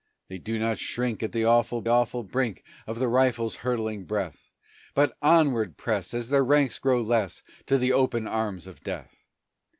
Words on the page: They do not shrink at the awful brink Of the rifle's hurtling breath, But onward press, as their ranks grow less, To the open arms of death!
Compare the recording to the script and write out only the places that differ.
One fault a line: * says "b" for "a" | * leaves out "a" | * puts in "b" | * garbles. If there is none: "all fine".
* puts in "awful"